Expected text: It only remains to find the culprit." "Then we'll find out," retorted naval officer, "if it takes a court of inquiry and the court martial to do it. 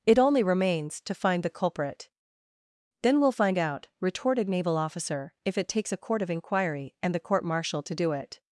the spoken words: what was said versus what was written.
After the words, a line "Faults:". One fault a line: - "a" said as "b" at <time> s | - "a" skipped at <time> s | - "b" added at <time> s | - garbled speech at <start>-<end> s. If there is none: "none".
It only remains to find the culprit." "Then we'll find out," retorted naval officer, "if it takes a court of inquiry and the court martial to do it.
Faults:
none